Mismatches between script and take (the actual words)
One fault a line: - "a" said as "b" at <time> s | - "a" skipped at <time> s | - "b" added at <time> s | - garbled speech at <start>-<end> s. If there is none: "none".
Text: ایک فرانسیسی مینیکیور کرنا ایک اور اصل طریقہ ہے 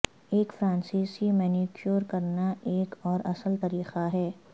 none